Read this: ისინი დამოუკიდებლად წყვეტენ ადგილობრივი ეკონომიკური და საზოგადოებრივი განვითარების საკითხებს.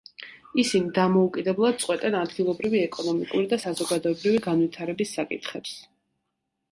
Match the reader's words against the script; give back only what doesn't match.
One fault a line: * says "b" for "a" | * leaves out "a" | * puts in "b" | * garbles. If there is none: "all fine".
all fine